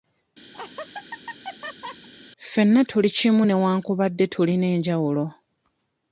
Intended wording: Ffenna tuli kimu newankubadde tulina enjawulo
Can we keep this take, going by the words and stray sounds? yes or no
no